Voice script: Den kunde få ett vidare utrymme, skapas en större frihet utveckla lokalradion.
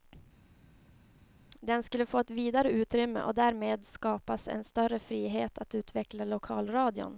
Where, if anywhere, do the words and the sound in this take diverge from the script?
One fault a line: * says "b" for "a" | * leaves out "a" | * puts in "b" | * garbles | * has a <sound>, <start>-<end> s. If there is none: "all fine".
* says "skulle" for "kunde"
* puts in "och därmed"
* puts in "att"